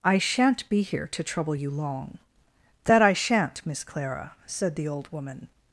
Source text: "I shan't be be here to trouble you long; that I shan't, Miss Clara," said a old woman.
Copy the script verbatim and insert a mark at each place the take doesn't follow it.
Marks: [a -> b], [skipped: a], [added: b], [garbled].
"I shan't be [skipped: be] here to trouble you long; that I shan't, Miss Clara," said [a -> the] old woman.